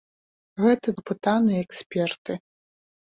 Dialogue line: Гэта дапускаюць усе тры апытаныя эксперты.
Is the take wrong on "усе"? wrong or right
wrong